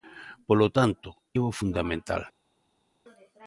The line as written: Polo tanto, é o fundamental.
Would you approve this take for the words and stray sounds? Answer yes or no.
yes